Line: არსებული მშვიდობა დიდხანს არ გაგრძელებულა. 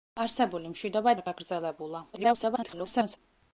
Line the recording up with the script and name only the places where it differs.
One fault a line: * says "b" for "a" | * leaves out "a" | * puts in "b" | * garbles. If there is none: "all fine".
* leaves out "დიდხანს"
* garbles